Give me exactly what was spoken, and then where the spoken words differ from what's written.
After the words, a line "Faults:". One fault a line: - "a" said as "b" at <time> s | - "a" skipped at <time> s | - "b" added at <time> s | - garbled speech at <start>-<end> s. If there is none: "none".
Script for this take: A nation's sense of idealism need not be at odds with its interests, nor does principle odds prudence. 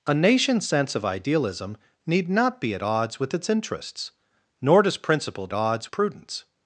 A nation's sense of idealism need not be at odds with its interests, nor does principle odds prudence.
Faults:
none